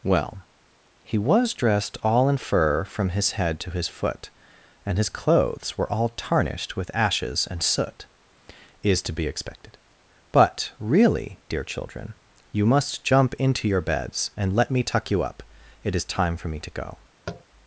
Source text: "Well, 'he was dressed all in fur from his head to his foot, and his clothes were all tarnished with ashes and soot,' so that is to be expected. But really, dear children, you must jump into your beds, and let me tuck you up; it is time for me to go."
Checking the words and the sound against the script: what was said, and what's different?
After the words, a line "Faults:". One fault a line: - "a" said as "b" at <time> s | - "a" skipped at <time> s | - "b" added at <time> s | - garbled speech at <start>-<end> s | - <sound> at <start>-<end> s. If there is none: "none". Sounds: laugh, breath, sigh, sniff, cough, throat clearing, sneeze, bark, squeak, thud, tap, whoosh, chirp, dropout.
"Well, 'he was dressed all in fur from his head to his foot, and his clothes were all tarnished with ashes and soot,' is to be expected. But really, dear children, you must jump into your beds, and let me tuck you up; it is time for me to go."
Faults:
- "so that" skipped at 8.1 s
- tap at 17.3-17.4 s